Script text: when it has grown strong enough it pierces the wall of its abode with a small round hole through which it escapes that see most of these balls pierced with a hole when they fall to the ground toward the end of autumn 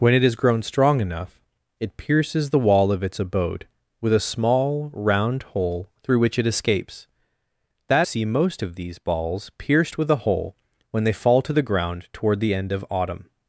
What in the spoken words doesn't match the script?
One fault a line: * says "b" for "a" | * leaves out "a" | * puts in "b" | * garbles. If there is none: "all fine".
all fine